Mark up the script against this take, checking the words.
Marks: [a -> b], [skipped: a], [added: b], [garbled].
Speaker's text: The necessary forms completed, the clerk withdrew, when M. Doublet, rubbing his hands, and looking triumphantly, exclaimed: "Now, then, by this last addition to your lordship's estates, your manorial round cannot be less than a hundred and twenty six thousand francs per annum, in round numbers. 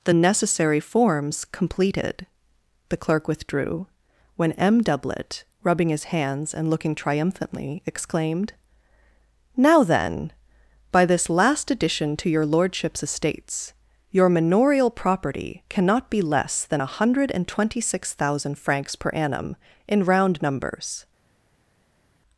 The necessary forms completed, the clerk withdrew, when M. Doublet, rubbing his hands, and looking triumphantly, exclaimed: "Now, then, by this last addition to your lordship's estates, your manorial [round -> property] cannot be less than a hundred and twenty six thousand francs per annum, in round numbers.